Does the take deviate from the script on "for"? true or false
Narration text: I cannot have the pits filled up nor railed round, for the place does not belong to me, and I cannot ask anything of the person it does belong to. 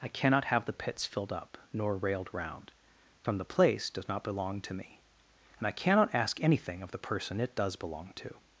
true